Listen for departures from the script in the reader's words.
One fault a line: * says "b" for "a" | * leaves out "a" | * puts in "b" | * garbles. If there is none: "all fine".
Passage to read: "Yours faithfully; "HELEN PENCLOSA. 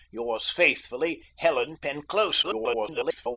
* garbles